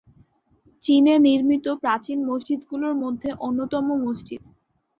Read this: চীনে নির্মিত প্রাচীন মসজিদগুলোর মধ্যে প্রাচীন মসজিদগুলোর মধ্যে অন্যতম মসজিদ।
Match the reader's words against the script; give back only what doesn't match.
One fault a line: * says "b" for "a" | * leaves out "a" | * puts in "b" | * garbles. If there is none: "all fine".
* leaves out "প্রাচীন মসজিদগুলোর মধ্যে"